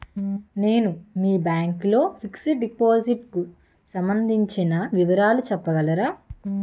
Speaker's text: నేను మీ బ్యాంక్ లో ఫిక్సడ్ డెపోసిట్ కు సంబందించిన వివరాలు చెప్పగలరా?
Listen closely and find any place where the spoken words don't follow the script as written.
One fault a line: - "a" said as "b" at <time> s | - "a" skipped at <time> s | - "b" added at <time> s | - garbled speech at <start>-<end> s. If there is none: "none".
none